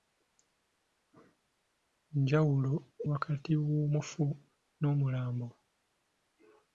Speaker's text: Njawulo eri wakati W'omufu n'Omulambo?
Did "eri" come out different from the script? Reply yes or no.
yes